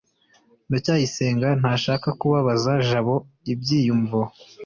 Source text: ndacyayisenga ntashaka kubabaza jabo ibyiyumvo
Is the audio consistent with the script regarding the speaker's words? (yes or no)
yes